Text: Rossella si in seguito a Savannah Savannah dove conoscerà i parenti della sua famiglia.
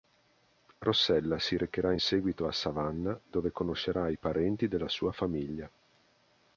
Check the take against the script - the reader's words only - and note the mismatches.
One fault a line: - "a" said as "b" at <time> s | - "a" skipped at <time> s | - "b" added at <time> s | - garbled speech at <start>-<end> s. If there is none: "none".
- "recherà" added at 1.6 s
- "Savannah" skipped at 3.2 s